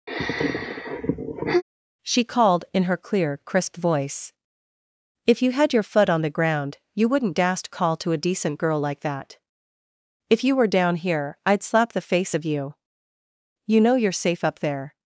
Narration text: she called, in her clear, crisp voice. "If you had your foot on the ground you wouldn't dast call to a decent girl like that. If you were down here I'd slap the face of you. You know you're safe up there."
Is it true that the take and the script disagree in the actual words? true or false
false